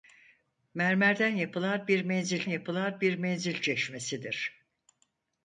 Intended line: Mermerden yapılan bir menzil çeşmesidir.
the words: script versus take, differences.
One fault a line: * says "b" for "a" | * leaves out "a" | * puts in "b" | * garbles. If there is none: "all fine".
* puts in "yapılan bir menzil"